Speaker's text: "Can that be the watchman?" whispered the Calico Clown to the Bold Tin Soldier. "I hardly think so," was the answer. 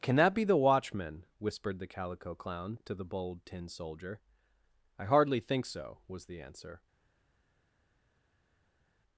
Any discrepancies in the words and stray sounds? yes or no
no